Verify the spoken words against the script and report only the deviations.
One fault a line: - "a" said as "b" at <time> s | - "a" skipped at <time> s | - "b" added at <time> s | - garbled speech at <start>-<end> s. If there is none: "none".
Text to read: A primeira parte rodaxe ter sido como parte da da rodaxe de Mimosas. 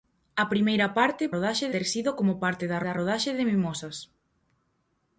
none